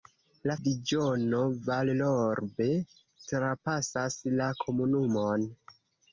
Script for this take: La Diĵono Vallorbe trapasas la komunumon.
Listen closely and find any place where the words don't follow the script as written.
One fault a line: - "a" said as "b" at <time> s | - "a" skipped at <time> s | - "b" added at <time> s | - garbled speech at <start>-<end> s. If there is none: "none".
none